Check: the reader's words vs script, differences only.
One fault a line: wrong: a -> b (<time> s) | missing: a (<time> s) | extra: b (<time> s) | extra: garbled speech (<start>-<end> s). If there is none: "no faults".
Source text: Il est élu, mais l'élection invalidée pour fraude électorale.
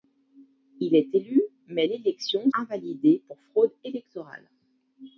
no faults